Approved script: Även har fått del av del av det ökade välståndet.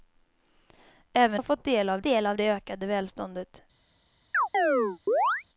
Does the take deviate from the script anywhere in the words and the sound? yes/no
yes